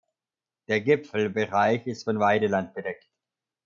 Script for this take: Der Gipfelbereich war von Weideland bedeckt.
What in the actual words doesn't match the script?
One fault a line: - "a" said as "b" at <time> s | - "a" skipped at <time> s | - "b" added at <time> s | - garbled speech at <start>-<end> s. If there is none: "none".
- "war" said as "ist" at 1.9 s